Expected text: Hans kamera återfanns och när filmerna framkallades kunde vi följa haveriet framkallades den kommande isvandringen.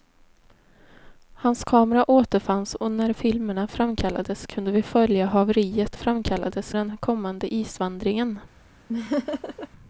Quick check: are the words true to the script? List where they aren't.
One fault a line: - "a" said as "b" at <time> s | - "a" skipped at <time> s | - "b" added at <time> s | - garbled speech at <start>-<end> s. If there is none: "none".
none